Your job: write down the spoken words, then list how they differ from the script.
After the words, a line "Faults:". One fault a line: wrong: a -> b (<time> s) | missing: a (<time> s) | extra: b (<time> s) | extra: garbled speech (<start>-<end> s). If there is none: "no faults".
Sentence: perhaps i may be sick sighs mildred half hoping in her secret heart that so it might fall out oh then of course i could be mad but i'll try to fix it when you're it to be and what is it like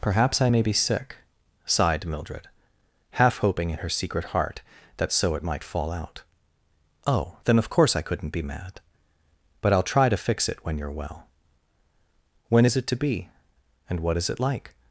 perhaps i may be sick sighed mildred half hoping in her secret heart that so it might fall out oh then of course i couldn't be mad but i'll try to fix it when you're well when is it to be and what is it like
Faults:
wrong: sighs -> sighed (1.6 s)
wrong: could -> couldn't (8.0 s)
extra: well when is (10.9 s)